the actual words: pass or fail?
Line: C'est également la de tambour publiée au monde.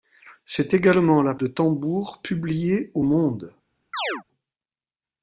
pass